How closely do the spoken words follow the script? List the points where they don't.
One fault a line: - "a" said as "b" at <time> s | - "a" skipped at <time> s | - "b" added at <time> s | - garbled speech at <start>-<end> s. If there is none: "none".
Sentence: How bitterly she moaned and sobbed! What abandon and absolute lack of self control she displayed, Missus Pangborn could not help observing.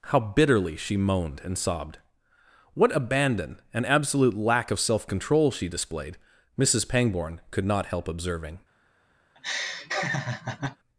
none